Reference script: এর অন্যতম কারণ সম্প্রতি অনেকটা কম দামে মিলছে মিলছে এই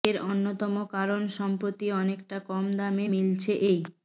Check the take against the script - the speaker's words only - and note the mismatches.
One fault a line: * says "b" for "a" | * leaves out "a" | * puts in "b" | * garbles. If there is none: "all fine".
* leaves out "মিলছে"